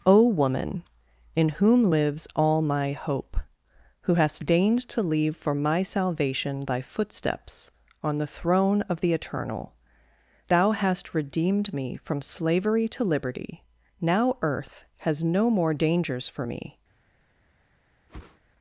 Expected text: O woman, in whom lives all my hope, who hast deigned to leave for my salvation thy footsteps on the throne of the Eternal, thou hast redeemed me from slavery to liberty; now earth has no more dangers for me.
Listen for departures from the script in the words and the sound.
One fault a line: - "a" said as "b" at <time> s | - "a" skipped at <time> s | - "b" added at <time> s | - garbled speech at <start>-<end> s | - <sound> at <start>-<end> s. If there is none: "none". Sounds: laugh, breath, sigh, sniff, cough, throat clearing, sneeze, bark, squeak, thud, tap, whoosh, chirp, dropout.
- whoosh at 18.1-18.4 s